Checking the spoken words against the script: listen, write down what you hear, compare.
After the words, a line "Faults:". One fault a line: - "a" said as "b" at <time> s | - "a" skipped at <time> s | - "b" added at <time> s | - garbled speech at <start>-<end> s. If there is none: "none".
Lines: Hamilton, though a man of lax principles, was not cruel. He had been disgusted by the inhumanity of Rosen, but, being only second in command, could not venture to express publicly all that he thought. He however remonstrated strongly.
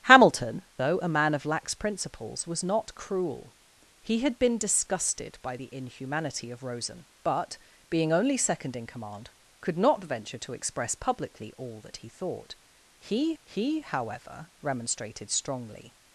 Hamilton, though a man of lax principles, was not cruel. He had been disgusted by the inhumanity of Rosen, but, being only second in command, could not venture to express publicly all that he thought. He he however remonstrated strongly.
Faults:
- "he" added at 13.4 s